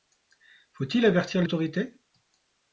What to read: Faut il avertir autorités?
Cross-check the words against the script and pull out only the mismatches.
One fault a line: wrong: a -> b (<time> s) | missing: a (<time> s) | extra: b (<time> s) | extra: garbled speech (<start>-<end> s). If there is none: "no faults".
no faults